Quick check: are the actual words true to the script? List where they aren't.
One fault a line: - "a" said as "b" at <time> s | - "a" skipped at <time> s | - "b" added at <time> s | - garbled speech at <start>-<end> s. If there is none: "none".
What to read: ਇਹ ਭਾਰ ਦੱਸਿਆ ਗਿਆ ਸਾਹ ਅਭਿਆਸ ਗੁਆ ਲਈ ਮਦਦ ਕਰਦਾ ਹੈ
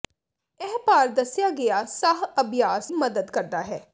- "ਗੁਆ ਲਈ" skipped at 2.9 s